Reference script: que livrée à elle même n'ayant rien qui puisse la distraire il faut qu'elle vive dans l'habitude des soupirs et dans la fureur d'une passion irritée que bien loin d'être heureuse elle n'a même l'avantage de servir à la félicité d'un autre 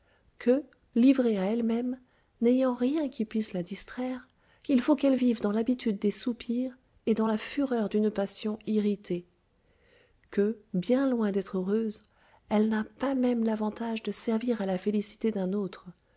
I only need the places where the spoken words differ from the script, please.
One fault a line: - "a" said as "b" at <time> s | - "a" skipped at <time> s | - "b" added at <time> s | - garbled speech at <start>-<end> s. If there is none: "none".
- "pas" added at 13.0 s